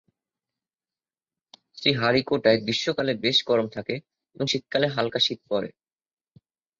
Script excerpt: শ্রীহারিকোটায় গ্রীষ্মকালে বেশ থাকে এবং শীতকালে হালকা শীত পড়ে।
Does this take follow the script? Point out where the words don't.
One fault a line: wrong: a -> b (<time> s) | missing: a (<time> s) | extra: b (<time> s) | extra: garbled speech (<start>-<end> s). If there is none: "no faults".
extra: গরম (3.5 s)